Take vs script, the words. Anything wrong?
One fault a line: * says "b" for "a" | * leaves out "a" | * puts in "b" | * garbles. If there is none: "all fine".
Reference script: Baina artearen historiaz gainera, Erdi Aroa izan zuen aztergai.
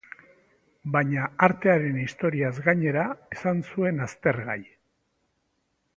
* leaves out "Erdi Aroa"